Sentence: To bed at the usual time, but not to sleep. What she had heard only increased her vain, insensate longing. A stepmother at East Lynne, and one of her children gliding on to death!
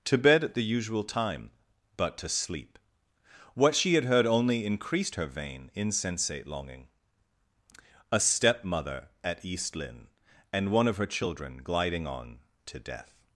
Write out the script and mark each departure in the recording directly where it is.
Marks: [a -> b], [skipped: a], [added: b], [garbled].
To bed at the usual time, but [skipped: not] to sleep. What she had heard only increased her vain, insensate longing. A stepmother at East Lynne, and one of her children gliding on to death!